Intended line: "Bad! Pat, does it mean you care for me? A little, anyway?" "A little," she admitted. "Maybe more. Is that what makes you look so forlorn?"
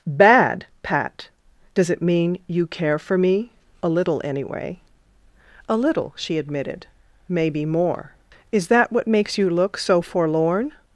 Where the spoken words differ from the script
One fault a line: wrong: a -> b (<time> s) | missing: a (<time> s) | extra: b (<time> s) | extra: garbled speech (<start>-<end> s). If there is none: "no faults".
no faults